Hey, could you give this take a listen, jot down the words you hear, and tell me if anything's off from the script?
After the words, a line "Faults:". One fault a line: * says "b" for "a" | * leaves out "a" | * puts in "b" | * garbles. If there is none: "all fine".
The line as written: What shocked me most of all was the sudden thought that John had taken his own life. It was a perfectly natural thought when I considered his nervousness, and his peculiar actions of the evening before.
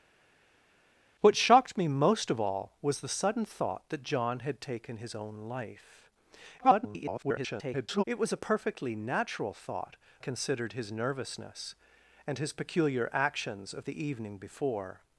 What shocked me most of all was the sudden thought that John had taken his own life. [garbled] It was a perfectly natural thought considered his nervousness, and his peculiar actions of the evening before.
Faults:
* garbles
* leaves out "when I"